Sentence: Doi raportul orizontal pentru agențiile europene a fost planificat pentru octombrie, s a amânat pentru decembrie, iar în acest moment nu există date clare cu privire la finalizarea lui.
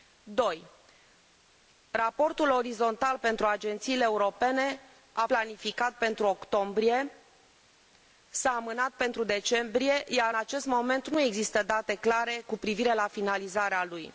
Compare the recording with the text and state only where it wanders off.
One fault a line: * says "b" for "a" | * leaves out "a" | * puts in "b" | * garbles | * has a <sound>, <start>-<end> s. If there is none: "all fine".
* leaves out "fost"
* leaves out "în"